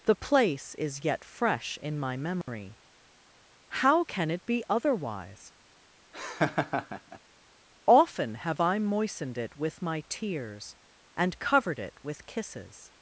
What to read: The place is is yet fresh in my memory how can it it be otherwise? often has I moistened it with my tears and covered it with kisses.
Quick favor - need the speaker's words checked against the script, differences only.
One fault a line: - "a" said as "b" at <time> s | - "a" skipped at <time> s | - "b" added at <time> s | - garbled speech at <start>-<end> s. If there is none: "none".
- "is" skipped at 1.1 s
- "it" skipped at 4.5 s
- "has" said as "have" at 8.3 s